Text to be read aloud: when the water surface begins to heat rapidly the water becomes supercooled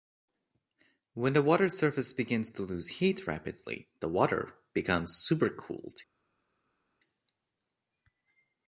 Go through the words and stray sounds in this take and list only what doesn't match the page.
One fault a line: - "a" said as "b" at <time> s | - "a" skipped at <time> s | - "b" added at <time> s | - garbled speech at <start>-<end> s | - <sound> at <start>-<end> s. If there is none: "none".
- "lose" added at 2.6 s